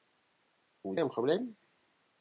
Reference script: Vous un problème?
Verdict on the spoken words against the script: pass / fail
pass